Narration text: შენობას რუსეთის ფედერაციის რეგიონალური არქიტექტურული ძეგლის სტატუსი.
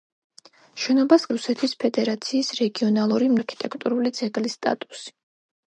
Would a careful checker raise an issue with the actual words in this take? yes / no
no